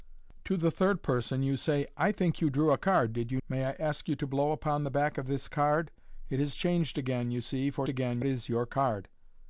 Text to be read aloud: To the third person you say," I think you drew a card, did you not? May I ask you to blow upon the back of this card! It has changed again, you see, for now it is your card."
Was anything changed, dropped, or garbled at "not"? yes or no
yes